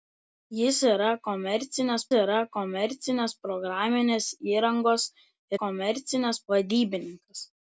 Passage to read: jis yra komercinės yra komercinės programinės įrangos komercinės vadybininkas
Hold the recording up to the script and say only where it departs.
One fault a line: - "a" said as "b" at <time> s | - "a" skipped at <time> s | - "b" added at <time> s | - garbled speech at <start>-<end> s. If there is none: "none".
none